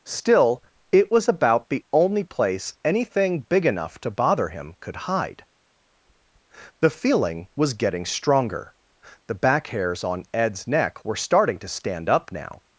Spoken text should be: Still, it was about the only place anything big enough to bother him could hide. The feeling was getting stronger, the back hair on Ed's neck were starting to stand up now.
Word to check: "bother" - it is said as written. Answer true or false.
true